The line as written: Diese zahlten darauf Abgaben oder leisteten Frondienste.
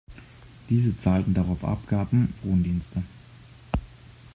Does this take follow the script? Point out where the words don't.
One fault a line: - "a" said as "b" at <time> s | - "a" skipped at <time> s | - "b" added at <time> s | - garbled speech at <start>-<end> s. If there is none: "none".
- "oder leisteten" skipped at 2.3 s